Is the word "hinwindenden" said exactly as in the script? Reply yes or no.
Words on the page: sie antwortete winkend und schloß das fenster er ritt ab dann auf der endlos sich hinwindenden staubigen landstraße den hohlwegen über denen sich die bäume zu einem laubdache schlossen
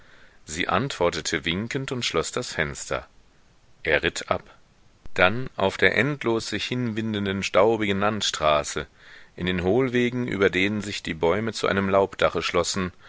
yes